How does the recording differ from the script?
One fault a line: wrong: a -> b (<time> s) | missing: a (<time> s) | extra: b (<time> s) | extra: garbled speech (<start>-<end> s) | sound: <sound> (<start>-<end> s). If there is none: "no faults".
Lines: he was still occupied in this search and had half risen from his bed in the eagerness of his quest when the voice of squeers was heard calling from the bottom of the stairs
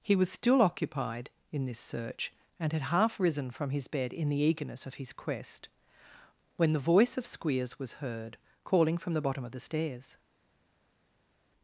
no faults